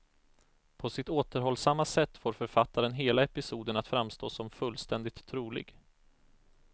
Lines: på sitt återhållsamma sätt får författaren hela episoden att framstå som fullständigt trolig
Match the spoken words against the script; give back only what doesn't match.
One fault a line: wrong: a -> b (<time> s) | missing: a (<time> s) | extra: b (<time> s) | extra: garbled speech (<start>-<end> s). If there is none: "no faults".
no faults